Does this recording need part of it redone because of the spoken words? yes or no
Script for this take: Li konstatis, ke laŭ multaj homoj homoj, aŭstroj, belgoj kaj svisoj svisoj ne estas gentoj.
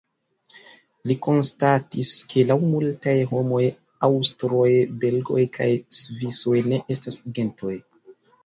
yes